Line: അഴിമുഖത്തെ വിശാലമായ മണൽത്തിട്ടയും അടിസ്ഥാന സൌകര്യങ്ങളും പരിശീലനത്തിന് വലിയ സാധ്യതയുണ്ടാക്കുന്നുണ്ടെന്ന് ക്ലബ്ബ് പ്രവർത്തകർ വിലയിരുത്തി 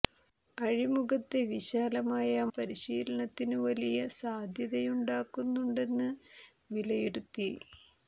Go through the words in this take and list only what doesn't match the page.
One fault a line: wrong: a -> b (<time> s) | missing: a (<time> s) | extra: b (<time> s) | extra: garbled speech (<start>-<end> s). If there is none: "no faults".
missing: മണൽത്തിട്ടയും അടിസ്ഥാന സൌകര്യങ്ങളും (2.3 s)
missing: ക്ലബ്ബ് പ്രവർത്തകർ (6.1 s)